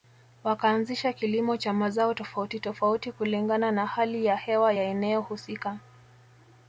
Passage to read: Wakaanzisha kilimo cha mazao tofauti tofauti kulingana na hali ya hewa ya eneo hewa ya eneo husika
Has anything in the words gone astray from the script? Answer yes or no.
yes